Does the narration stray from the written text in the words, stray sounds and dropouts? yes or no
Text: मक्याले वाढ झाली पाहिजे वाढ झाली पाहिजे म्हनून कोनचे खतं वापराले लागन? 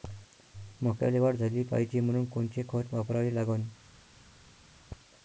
yes